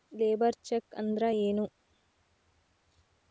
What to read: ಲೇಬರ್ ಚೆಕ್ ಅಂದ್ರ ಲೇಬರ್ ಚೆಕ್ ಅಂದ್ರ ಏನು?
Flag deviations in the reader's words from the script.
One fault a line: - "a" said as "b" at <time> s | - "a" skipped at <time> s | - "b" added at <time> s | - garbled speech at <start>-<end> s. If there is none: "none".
- "ಲೇಬರ್ ಚೆಕ್ ಅಂದ್ರ" skipped at 1.2 s